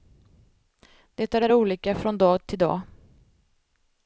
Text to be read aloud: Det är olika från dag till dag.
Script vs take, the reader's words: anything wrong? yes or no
yes